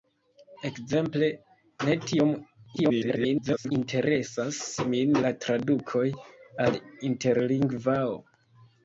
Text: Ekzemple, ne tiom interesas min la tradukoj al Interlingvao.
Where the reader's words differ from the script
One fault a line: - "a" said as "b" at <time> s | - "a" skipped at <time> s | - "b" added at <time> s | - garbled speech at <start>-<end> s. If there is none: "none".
- garbled speech at 2.8-3.7 s